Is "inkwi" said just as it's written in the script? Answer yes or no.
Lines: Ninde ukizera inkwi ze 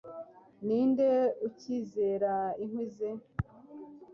yes